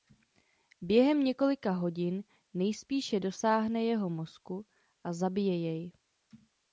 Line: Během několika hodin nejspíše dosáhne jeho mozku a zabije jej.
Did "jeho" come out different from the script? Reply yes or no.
no